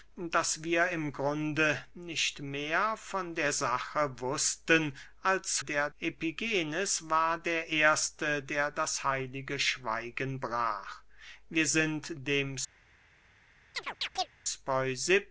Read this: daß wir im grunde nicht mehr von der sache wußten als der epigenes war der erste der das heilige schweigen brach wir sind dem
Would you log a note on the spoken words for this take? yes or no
no